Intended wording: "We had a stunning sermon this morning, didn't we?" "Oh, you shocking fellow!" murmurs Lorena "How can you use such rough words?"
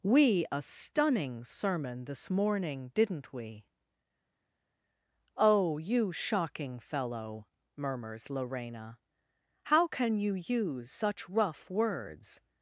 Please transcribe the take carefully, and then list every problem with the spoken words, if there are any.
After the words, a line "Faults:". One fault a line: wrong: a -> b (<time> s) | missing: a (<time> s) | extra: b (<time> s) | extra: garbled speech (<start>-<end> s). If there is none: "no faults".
"We a stunning sermon this morning, didn't we?" "Oh, you shocking fellow!" murmurs Lorena "How can you use such rough words?"
Faults:
missing: had (0.5 s)